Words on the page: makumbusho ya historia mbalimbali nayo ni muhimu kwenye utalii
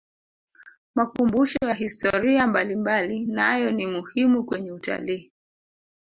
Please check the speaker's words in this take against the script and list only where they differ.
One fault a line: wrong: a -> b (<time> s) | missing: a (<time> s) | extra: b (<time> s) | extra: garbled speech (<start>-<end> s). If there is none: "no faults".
no faults